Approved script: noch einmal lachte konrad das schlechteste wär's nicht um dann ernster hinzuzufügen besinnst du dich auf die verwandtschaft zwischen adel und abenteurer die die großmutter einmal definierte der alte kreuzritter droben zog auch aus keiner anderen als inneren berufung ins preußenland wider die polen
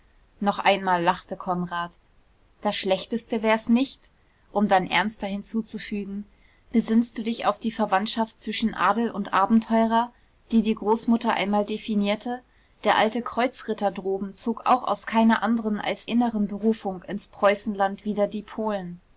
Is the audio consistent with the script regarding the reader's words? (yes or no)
yes